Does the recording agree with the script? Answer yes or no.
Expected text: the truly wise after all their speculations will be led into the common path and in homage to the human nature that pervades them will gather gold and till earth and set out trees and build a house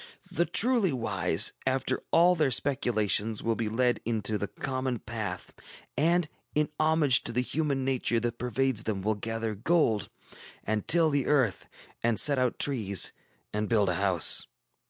no